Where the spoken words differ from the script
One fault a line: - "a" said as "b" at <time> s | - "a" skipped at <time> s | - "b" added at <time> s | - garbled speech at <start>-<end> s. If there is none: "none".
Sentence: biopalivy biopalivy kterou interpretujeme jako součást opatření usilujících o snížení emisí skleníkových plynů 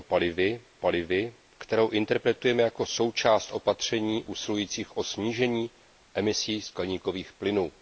none